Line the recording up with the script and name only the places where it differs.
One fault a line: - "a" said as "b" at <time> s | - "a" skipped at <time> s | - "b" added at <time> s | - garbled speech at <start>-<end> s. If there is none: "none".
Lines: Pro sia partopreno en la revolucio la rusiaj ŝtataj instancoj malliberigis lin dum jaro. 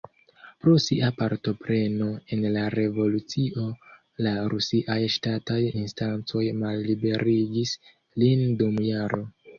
none